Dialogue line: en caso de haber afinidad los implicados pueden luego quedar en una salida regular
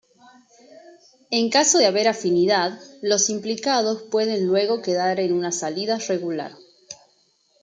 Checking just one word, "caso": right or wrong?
right